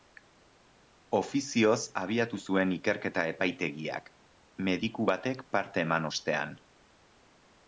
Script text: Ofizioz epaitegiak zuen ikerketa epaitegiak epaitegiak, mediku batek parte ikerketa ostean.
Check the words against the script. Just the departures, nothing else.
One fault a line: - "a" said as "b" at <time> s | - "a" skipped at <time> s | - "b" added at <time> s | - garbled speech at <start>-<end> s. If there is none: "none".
- "epaitegiak" said as "abiatu" at 2.0 s
- "epaitegiak" skipped at 4.1 s
- "ikerketa" said as "eman" at 5.9 s